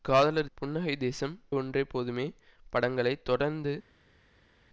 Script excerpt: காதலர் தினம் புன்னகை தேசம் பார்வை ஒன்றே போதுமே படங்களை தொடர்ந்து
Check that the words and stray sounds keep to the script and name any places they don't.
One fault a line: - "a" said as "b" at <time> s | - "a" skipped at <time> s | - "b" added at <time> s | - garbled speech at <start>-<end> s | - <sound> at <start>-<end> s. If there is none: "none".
- "தினம்" skipped at 0.5 s
- "பார்வை" skipped at 1.3 s